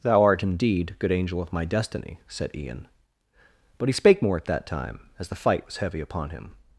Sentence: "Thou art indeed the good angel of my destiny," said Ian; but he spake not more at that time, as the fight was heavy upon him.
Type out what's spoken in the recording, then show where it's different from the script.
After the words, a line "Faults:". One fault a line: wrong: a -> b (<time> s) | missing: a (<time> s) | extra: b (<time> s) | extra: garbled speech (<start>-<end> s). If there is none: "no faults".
"Thou art indeed good angel of my destiny," said Ian; but he spake more at that time, as the fight was heavy upon him.
Faults:
missing: the (0.9 s)
missing: not (4.2 s)